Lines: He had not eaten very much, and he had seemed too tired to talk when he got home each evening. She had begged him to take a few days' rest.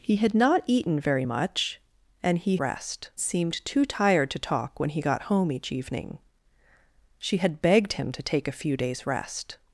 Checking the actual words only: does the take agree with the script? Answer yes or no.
no